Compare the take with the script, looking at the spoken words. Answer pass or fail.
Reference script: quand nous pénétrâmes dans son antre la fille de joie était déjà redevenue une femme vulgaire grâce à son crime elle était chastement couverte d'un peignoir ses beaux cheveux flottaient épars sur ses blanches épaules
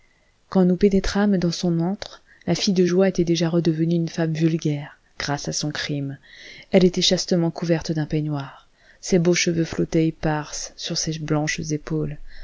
pass